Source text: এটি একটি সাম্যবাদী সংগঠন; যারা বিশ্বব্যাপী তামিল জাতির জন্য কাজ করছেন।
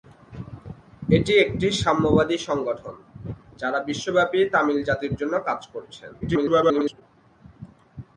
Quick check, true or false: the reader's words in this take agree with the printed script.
false